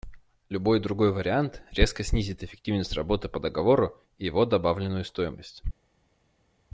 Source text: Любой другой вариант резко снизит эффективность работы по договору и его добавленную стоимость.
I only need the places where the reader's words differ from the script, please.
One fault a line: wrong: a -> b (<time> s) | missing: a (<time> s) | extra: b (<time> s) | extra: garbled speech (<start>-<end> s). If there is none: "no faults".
no faults